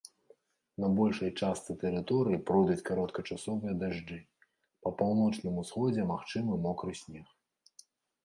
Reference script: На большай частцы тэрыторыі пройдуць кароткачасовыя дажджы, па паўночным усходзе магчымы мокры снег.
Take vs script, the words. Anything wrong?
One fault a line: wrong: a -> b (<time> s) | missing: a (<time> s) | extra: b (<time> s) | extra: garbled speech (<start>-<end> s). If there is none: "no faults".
no faults